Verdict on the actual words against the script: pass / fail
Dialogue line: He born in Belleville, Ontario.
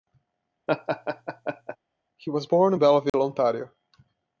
fail